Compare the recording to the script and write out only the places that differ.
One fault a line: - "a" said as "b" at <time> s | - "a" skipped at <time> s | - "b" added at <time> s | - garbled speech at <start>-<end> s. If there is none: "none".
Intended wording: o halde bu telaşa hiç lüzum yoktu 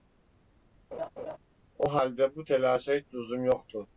none